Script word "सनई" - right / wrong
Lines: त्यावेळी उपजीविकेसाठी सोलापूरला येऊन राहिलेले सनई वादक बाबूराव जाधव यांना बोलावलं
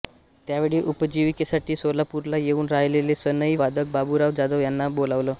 right